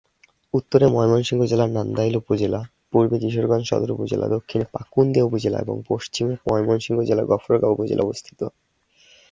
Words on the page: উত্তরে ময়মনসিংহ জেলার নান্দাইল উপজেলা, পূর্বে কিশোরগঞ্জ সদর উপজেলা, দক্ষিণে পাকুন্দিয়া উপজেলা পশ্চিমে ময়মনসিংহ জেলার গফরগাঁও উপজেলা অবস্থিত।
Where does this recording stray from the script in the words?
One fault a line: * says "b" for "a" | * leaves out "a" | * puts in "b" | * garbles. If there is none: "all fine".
* puts in "এবং"